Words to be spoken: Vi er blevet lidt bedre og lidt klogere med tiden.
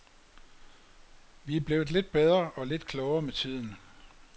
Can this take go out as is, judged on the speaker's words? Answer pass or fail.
pass